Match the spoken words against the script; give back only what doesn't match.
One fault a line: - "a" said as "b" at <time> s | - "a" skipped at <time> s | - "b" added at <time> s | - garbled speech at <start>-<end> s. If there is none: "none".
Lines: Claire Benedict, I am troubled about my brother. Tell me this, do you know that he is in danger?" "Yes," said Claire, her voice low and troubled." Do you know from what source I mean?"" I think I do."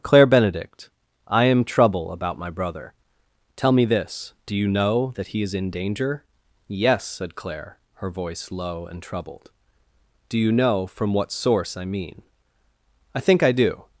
- "troubled" said as "trouble" at 1.6 s